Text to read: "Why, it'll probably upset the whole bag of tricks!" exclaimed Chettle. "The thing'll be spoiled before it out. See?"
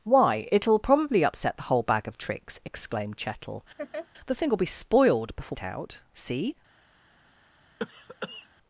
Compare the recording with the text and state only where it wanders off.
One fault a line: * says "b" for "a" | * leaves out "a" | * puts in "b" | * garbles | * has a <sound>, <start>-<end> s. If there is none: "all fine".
* has a laugh, 3.8-4.1 s
* has a cough, 7.8-8.5 s